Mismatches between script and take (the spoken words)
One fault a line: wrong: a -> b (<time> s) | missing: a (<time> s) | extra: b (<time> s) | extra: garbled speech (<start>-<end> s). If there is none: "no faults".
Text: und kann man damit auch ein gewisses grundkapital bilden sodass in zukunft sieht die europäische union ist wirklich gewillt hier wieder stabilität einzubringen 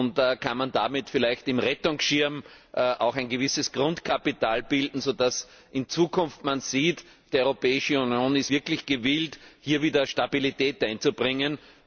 extra: vielleicht im rettungsschirm (1.1 s)
extra: man (5.5 s)